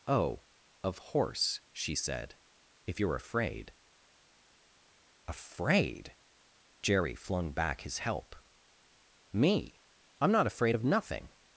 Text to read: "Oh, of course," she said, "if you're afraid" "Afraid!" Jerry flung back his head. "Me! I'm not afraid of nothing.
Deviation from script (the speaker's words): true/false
true